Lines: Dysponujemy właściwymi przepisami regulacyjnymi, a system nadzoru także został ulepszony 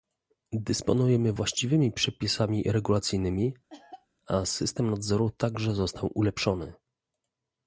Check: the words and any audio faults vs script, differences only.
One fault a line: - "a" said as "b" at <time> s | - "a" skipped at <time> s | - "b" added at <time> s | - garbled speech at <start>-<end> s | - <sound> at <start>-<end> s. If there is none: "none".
- cough at 3.7-4.1 s